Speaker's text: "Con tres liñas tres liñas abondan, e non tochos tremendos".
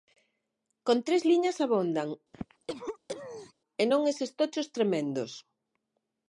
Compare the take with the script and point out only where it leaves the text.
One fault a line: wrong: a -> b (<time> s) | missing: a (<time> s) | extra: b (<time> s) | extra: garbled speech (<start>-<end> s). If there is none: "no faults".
missing: tres liñas (1.6 s)
extra: eses (4.1 s)